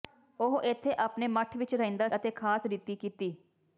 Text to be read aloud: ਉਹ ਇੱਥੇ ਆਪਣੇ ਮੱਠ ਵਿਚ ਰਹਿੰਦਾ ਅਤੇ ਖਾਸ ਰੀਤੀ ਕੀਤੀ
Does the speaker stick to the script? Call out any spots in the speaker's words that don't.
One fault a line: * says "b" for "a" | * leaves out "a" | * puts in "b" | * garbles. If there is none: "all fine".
all fine